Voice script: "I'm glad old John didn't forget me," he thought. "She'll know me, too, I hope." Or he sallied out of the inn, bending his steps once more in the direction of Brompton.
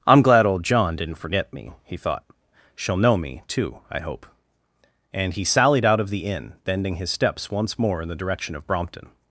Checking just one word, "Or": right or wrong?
wrong